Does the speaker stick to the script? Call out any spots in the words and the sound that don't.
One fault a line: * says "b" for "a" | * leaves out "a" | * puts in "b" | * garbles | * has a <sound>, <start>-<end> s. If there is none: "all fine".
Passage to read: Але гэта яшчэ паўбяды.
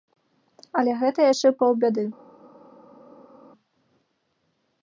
all fine